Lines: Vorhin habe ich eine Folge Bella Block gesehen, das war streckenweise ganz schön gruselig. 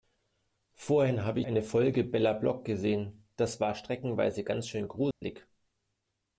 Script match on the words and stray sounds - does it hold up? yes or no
no